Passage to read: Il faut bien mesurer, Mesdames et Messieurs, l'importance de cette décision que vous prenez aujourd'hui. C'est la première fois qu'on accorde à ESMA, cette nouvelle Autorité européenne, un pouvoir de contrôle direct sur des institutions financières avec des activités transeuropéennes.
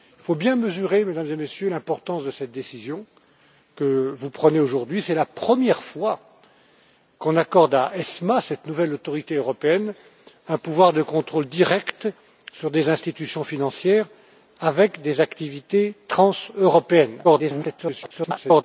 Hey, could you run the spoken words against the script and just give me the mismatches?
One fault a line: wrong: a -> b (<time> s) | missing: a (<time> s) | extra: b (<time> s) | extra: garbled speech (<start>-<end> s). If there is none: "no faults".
extra: garbled speech (17.2-18.6 s)